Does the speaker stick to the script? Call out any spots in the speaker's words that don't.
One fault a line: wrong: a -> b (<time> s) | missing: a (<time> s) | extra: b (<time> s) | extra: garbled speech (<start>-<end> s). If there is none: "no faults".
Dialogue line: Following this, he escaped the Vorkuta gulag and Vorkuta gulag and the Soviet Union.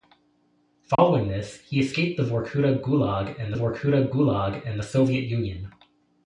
no faults